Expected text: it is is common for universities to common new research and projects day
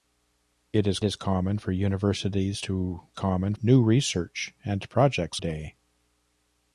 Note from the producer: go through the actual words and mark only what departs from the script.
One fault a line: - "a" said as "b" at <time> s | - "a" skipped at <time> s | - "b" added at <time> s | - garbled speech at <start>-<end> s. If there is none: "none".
none